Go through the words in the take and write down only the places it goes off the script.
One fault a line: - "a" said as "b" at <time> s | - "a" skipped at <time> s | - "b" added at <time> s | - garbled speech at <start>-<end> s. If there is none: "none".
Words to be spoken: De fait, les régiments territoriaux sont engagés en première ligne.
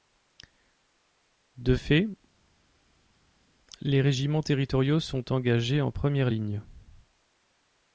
none